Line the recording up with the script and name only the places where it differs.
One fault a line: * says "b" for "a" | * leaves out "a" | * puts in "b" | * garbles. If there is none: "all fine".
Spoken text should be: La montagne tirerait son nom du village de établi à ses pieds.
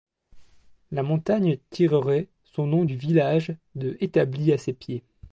all fine